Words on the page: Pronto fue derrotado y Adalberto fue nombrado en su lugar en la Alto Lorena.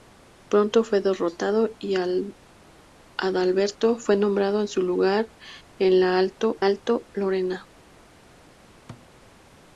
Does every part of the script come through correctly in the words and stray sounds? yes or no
no